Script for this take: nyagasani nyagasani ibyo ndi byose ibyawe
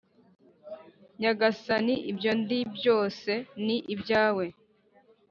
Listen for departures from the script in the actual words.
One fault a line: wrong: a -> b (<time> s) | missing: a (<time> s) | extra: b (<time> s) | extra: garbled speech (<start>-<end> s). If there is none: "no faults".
missing: nyagasani (1.9 s)
extra: ni (3.6 s)